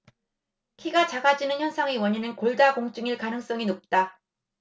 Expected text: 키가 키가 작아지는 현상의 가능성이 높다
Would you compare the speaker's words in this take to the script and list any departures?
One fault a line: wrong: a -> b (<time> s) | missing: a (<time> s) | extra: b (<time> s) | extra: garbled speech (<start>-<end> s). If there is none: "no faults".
missing: 키가 (1.1 s)
extra: 원인은 골다공증일 (2.0 s)